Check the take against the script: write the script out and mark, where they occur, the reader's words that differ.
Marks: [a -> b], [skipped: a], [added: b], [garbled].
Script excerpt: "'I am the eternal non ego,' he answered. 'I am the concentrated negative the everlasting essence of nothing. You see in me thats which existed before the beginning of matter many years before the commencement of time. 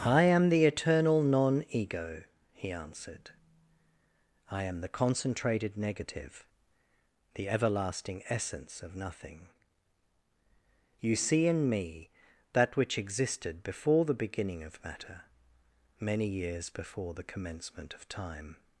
"'I am the eternal non ego,' he answered. 'I am the concentrated negative the everlasting essence of nothing. You see in me [thats -> that] which existed before the beginning of matter many years before the commencement of time.